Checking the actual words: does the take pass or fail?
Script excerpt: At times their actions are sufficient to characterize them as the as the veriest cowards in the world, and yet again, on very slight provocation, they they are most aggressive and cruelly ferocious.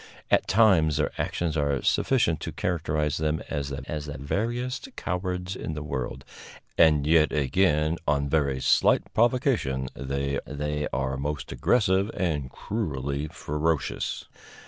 pass